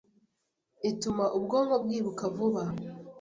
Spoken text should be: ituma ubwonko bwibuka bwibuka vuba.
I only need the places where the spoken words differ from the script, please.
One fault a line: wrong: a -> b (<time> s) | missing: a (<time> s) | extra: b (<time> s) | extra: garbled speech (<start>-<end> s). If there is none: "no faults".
missing: bwibuka (2.2 s)